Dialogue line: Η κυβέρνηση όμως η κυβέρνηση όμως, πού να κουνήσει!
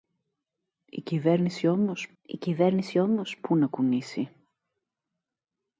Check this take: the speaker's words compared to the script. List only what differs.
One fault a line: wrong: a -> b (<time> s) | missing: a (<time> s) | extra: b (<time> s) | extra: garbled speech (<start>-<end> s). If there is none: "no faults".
no faults